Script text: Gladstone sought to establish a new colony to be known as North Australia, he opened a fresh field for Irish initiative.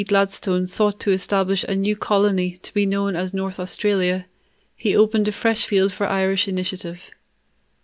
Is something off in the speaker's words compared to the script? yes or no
no